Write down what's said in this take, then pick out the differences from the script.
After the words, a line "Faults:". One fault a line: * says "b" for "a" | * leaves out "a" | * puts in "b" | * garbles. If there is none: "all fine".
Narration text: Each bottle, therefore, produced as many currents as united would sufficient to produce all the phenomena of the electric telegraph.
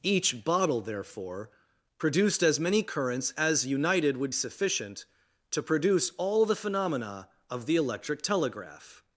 Each bottle, therefore, produced as many currents as united would sufficient to produce all the phenomena of the electric telegraph.
Faults:
all fine